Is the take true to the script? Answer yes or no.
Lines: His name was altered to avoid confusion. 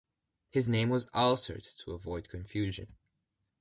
yes